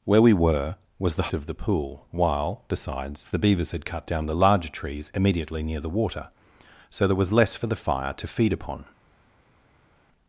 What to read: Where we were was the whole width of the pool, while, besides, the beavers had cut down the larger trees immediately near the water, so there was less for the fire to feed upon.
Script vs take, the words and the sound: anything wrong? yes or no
yes